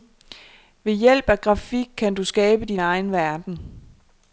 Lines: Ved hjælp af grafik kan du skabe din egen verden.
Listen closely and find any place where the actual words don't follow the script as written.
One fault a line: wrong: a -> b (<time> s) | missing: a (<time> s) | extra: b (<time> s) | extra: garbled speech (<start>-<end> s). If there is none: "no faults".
no faults